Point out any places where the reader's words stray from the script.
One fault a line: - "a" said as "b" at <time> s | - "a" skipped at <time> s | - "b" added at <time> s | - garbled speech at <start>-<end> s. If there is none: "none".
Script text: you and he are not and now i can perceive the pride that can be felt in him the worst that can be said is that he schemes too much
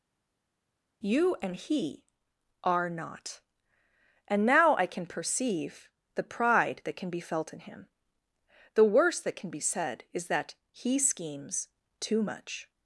none